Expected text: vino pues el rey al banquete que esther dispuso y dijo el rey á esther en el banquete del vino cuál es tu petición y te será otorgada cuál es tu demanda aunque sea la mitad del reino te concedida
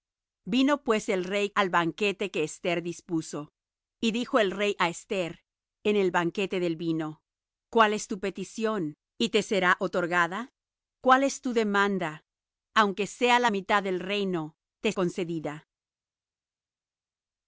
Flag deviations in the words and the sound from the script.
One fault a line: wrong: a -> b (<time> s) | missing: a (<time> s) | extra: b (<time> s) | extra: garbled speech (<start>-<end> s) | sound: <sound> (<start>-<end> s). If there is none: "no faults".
no faults